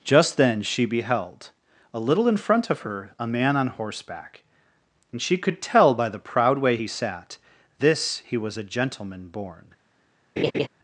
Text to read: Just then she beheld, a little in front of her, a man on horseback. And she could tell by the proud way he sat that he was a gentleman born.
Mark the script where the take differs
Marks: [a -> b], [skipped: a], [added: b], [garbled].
Just then she beheld, a little in front of her, a man on horseback. And she could tell by the proud way he sat [that -> this] he was a gentleman born.